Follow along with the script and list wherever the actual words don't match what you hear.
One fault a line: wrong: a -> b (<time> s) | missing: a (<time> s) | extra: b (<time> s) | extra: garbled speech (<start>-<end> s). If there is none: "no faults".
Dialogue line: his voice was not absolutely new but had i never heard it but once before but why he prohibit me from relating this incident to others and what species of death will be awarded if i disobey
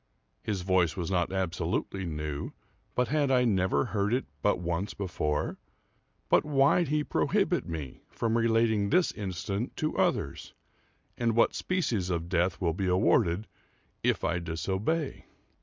no faults